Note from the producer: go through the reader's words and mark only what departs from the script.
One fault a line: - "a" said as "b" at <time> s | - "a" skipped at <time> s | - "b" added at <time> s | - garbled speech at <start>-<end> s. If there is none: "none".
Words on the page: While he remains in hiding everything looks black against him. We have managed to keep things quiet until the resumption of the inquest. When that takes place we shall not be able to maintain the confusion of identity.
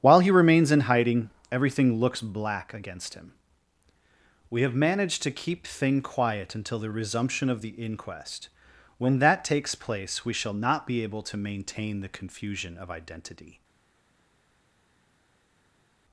- "things" said as "thing" at 5.7 s